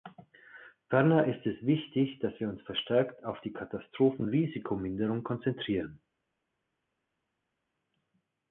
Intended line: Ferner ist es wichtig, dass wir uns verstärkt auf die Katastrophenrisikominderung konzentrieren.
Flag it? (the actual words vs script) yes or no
no